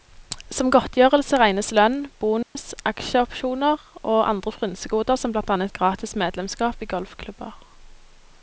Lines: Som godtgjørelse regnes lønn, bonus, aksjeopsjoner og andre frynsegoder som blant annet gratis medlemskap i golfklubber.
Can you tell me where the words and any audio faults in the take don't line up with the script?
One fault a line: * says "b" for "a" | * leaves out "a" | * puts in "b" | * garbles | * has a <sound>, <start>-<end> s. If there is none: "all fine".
* has a dropout, 2.4-2.6 s